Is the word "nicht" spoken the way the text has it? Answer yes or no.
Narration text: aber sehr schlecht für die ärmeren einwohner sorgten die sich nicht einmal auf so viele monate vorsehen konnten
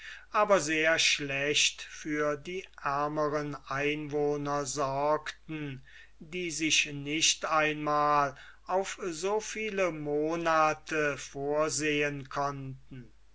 yes